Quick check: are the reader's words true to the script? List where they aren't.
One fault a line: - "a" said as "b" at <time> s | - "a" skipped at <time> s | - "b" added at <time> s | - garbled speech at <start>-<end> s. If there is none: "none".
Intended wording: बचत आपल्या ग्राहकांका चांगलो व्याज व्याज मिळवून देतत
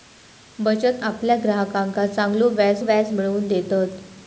none